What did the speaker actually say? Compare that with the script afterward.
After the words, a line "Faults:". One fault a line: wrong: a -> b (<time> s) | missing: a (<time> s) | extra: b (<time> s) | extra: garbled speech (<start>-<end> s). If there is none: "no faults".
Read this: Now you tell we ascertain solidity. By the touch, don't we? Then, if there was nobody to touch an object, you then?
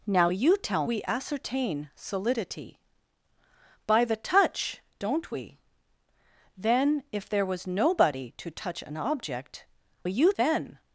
Now you tell we ascertain solidity. By the touch, don't we? Then, if there was nobody to touch an object, you then?
Faults:
no faults